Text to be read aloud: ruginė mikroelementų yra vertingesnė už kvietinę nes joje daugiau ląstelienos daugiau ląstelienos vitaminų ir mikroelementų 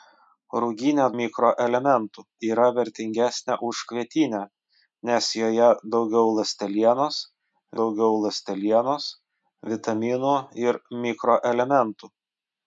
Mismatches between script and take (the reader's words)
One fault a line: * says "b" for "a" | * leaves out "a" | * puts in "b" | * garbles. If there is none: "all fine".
all fine